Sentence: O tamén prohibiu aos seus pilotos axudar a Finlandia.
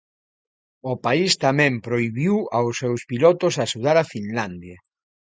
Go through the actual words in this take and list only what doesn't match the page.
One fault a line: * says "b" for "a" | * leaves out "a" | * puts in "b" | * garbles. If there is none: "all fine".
* puts in "país"